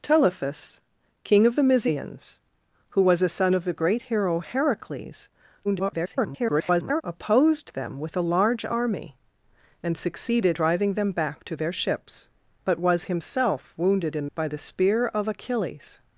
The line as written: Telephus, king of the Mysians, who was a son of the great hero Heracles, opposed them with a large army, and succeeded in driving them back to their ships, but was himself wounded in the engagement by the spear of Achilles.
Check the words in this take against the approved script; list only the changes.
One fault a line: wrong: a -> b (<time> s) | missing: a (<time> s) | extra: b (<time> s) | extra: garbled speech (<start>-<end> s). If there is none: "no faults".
extra: garbled speech (5.6-7.0 s)
missing: in (10.6 s)
missing: the engagement (14.3 s)